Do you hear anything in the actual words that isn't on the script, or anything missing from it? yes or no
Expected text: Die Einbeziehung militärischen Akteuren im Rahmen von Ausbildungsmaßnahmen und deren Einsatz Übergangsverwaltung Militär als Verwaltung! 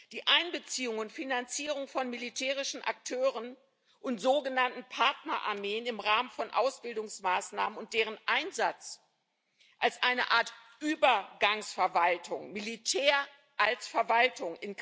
yes